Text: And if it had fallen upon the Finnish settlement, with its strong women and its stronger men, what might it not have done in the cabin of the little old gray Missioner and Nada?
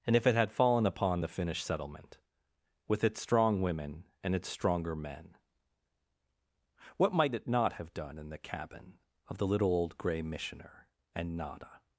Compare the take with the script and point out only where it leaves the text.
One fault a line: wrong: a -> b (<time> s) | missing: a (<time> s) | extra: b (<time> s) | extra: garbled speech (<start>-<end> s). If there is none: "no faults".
no faults